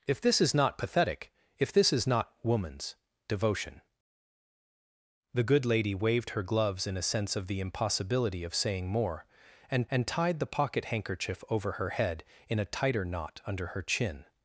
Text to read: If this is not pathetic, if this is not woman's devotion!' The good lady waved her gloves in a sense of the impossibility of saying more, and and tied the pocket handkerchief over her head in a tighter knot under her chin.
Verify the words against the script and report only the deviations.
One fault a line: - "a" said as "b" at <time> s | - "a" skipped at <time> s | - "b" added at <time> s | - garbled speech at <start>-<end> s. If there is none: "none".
none